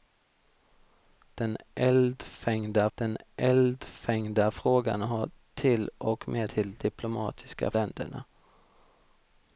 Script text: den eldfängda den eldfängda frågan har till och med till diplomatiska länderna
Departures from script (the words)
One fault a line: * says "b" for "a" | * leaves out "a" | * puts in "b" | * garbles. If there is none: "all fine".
all fine